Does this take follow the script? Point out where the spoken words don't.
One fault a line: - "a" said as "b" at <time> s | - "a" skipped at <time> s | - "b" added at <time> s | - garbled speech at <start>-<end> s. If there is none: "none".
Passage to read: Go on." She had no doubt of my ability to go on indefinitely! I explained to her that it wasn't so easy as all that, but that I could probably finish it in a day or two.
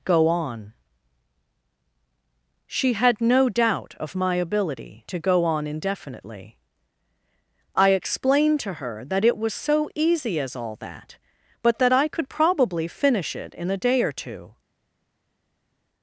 - "wasn't" said as "was" at 9.4 s